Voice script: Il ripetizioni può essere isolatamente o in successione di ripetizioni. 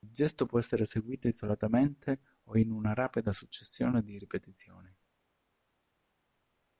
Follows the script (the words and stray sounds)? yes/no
no